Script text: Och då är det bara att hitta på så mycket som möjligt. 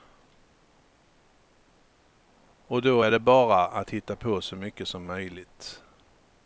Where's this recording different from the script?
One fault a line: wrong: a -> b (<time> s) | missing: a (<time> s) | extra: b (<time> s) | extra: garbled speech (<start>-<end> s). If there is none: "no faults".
no faults